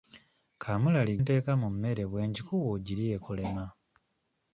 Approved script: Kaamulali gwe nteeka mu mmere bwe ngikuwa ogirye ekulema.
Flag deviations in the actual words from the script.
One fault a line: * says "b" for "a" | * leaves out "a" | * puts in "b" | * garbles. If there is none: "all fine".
* leaves out "gwe"